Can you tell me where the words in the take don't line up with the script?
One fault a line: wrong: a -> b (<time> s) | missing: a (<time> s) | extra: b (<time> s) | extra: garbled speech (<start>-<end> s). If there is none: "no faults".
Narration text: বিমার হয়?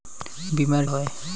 no faults